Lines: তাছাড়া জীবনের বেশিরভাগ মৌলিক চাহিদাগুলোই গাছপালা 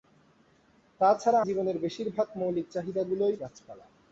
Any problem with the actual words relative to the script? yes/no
no